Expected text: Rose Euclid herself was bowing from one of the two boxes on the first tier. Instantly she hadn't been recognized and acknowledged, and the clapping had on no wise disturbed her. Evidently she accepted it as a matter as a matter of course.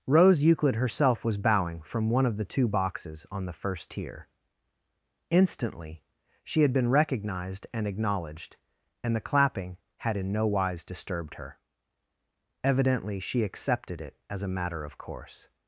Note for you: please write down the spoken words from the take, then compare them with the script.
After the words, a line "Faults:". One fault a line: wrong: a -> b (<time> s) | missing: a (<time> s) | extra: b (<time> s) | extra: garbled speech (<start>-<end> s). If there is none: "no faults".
Rose Euclid herself was bowing from one of the two boxes on the first tier. Instantly she had been recognized and acknowledged, and the clapping had in no wise disturbed her. Evidently she accepted it as a matter of course.
Faults:
wrong: hadn't -> had (6.6 s)
wrong: on -> in (10.1 s)
missing: as a matter (14.8 s)